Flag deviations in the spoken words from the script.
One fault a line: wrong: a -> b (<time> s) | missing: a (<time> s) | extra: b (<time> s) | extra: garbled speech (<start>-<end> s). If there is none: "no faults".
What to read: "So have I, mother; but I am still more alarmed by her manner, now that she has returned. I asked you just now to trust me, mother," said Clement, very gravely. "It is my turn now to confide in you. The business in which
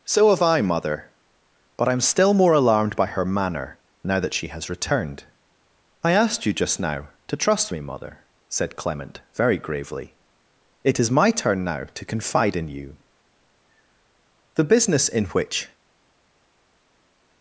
no faults